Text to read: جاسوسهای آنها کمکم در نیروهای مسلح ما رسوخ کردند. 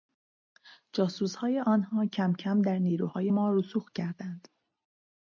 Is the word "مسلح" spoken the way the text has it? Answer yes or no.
no